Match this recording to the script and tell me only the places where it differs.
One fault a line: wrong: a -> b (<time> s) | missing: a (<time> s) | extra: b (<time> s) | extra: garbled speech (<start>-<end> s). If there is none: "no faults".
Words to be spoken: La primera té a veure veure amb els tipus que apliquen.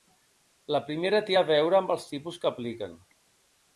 missing: veure (1.8 s)